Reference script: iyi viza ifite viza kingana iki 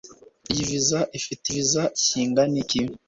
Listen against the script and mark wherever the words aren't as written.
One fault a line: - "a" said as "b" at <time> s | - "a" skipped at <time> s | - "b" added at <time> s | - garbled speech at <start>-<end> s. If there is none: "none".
none